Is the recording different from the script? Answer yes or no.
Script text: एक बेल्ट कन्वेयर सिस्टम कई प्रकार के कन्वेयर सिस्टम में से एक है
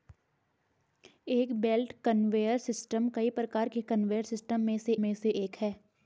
yes